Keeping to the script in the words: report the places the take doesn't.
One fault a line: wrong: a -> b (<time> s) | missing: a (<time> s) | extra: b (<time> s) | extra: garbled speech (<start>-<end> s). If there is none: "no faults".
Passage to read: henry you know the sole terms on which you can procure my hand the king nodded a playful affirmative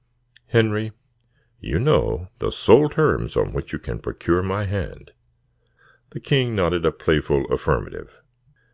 no faults